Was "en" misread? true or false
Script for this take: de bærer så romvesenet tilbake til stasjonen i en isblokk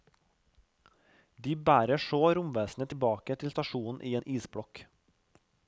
false